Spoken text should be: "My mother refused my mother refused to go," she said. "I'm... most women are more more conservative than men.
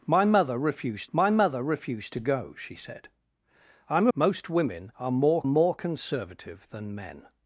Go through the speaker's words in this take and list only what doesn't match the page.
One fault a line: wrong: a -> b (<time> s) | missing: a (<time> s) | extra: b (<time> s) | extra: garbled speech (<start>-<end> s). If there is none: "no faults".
no faults